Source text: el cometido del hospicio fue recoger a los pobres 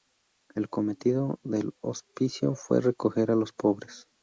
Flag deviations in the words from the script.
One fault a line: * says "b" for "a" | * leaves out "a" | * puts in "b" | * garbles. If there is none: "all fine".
all fine